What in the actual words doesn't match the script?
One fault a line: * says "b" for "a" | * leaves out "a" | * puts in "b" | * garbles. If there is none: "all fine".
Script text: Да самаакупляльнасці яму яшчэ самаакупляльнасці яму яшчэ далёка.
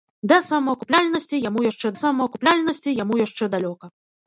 all fine